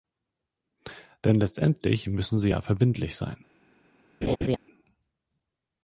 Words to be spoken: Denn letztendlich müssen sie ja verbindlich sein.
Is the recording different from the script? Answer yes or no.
no